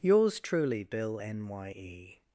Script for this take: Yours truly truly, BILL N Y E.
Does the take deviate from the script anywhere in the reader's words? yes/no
yes